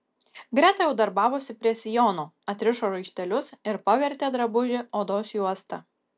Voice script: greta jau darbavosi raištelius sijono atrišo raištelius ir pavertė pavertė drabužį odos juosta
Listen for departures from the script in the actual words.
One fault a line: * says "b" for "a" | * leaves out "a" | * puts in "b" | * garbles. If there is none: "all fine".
* says "prie" for "raištelius"
* leaves out "pavertė"